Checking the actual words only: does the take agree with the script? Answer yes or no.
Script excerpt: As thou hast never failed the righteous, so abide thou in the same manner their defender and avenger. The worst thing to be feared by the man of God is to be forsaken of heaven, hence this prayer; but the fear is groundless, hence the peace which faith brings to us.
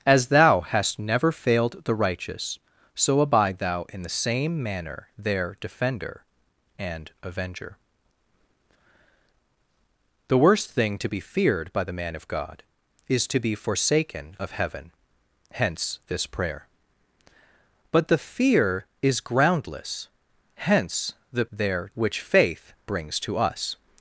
no